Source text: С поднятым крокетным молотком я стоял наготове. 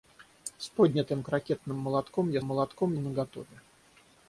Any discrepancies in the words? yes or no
yes